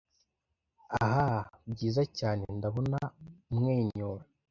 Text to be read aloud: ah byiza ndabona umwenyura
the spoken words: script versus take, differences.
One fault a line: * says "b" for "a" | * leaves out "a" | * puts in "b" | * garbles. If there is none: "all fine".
* puts in "cyane"